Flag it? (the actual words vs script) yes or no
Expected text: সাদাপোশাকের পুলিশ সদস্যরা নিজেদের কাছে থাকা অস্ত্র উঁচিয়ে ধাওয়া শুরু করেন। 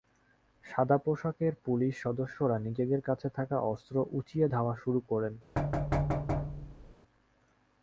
no